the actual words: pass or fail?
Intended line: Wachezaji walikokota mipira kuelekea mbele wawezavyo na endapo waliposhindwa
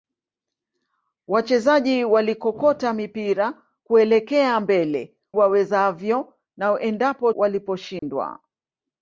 pass